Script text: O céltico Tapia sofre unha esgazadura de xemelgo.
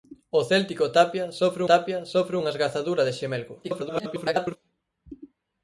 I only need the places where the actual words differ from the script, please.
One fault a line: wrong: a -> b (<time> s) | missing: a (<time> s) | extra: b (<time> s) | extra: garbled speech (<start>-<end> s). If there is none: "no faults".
extra: Tapia sofre (1.7 s)
extra: garbled speech (3.6-4.6 s)